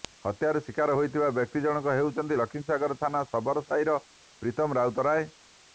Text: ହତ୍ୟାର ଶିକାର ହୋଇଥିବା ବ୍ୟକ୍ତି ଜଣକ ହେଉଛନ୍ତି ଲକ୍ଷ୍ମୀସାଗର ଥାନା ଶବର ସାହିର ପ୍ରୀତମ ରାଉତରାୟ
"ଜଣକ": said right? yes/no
yes